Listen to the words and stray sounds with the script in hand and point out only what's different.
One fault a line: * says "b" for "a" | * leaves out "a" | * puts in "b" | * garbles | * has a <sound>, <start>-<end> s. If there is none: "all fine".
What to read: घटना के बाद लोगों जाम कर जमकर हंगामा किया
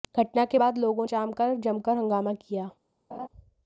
* has a laugh, 3.1-3.3 s